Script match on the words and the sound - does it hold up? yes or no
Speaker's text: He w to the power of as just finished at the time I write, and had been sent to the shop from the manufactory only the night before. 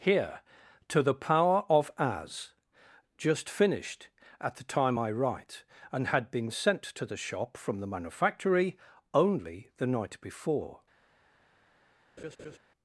no